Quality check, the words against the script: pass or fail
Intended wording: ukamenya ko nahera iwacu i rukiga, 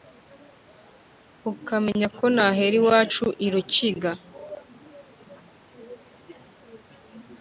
pass